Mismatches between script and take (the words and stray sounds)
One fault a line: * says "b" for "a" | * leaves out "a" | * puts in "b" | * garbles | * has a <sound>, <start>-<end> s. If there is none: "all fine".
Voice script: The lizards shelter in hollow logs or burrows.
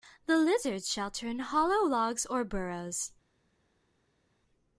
all fine